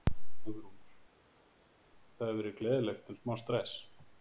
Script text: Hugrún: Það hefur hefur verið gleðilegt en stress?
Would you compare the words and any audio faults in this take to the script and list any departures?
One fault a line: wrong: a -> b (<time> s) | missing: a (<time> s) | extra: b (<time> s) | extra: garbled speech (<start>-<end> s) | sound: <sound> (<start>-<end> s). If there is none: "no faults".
missing: hefur (2.4 s)
extra: smá (3.2 s)